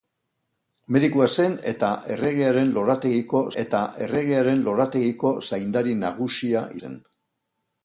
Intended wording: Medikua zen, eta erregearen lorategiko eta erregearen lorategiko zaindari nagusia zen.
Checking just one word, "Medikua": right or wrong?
right